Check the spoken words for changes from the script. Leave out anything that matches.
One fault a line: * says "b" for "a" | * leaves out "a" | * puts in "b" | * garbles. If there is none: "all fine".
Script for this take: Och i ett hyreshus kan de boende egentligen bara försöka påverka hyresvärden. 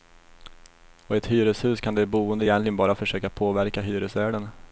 all fine